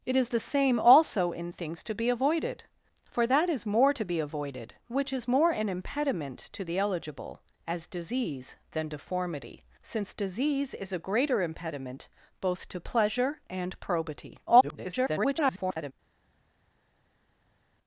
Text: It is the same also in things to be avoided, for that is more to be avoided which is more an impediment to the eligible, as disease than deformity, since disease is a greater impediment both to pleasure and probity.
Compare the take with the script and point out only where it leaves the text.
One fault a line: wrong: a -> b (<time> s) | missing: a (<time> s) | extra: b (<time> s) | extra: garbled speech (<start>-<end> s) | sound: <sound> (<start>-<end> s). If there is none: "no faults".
extra: garbled speech (14.5-15.9 s)